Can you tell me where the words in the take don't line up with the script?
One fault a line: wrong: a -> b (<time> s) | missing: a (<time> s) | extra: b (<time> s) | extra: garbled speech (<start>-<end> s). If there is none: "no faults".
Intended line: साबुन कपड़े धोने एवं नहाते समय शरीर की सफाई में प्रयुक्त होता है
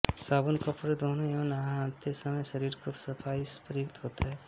no faults